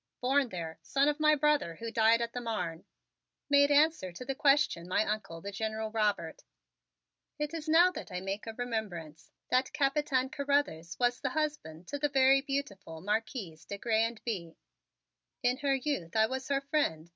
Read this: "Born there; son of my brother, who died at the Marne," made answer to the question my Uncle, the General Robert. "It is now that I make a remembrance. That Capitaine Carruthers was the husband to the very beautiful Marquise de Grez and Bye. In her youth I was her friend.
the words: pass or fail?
pass